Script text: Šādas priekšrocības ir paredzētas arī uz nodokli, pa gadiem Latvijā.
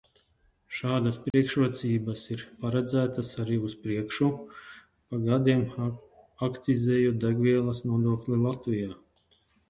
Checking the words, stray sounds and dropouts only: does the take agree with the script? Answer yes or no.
no